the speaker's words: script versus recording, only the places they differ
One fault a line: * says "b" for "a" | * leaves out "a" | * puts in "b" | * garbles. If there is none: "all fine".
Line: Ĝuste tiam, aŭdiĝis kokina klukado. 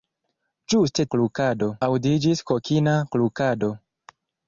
* says "klukado" for "tiam"